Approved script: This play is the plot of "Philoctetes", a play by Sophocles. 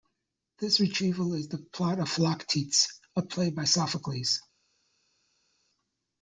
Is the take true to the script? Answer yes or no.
no